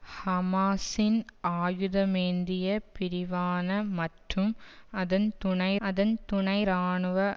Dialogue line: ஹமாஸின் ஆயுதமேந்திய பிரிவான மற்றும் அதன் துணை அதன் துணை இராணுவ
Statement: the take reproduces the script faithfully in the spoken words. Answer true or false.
true